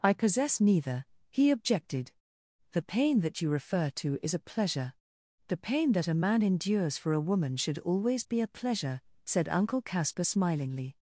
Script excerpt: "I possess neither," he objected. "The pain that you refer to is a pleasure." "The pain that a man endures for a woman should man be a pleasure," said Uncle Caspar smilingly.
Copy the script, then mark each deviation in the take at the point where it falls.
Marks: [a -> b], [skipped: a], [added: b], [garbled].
"I possess neither," he objected. "The pain that you refer to is a pleasure." "The pain that a man endures for a woman should [man -> always] be a pleasure," said Uncle Caspar smilingly.